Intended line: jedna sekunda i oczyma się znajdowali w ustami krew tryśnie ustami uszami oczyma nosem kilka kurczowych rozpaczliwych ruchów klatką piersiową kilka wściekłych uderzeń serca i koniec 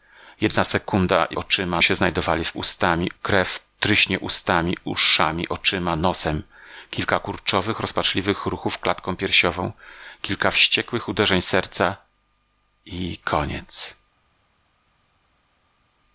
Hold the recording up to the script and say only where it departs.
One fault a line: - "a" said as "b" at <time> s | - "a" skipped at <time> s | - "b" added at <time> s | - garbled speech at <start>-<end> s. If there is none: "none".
none